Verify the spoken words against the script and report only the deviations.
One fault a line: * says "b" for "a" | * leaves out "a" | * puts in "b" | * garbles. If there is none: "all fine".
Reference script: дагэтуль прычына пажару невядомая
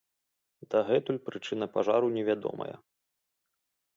all fine